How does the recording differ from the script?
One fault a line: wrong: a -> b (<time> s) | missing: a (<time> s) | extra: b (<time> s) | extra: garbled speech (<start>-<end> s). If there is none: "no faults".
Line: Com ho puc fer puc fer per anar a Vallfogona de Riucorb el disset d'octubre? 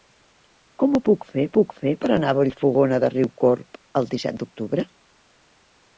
no faults